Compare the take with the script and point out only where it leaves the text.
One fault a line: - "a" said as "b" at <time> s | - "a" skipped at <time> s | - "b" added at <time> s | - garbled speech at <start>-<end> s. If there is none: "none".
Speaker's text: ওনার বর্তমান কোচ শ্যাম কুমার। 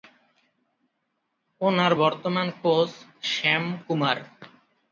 none